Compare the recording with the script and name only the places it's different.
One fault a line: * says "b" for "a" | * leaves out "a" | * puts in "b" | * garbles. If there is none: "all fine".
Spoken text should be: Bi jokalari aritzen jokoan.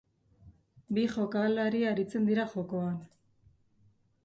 * puts in "dira"